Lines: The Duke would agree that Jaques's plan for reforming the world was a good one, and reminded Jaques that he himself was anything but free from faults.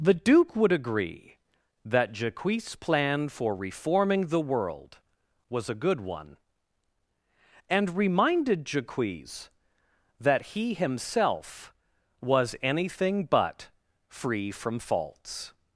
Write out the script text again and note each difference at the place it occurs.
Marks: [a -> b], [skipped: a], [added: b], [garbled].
The Duke would agree that Jaques's plan for reforming the world was a good one, and reminded Jaques that he himself was anything but free from faults.